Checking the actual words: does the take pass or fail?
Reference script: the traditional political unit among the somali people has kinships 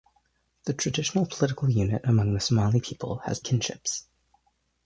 pass